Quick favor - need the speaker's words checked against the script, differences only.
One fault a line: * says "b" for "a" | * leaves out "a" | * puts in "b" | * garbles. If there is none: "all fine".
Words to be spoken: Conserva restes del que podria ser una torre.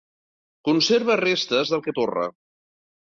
* leaves out "podria ser una"